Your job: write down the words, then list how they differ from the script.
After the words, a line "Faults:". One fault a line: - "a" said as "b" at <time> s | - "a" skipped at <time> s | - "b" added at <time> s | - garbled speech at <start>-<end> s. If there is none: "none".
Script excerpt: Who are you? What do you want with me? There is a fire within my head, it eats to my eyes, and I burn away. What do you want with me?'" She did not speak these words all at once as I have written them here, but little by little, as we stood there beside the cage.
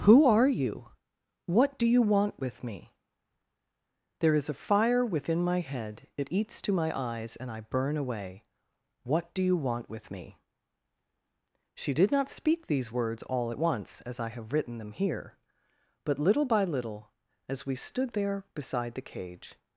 Who are you? What do you want with me? There is a fire within my head, it eats to my eyes, and I burn away. What do you want with me?'" She did not speak these words all at once as I have written them here, but little by little, as we stood there beside the cage.
Faults:
none